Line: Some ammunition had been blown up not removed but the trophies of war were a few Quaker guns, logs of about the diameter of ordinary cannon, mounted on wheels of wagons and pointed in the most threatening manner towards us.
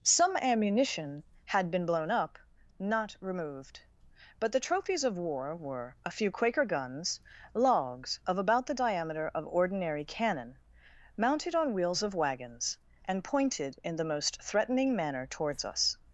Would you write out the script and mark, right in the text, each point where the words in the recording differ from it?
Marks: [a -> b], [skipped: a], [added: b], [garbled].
Some ammunition had been blown up not removed but the trophies of war were a few Quaker guns, logs of about the diameter of ordinary cannon, mounted on wheels of wagons and pointed in the most threatening manner towards us.